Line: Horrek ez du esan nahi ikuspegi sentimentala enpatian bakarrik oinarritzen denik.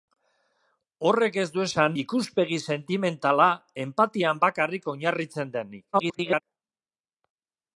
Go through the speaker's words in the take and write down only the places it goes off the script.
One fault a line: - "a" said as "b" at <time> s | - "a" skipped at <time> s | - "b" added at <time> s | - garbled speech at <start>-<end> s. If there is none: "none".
- "nahi" skipped at 2.0 s
- garbled speech at 5.9-6.4 s